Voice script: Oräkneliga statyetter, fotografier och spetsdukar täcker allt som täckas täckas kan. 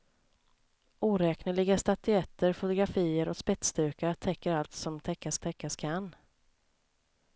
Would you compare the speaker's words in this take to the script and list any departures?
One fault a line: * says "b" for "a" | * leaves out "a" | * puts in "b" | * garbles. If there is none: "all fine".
all fine